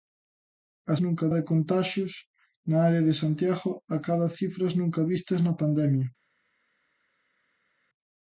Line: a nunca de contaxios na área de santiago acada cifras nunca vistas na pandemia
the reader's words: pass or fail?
pass